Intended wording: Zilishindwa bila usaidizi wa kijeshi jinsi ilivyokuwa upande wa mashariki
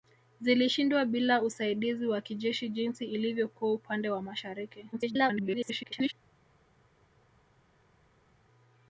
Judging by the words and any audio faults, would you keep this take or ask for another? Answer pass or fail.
fail